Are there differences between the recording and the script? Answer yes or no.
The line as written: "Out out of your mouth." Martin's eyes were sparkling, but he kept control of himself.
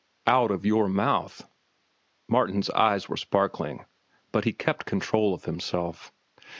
yes